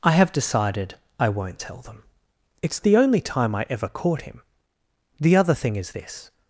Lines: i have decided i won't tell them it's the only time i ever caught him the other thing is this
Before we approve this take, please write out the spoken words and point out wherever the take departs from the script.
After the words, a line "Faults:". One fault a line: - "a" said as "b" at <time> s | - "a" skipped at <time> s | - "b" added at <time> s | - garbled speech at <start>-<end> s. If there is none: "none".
i have decided i won't tell them it's the only time i ever caught him the other thing is this
Faults:
none